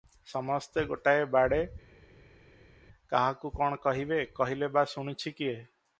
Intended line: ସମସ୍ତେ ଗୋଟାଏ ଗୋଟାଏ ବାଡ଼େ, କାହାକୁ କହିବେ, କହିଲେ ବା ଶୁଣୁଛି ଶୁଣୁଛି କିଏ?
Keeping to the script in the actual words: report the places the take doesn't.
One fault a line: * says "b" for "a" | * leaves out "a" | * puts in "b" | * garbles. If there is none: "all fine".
* leaves out "ଗୋଟାଏ"
* puts in "କଣ"
* leaves out "ଶୁଣୁଛି"